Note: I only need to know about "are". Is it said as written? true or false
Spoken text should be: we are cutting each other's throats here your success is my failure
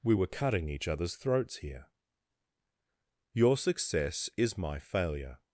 false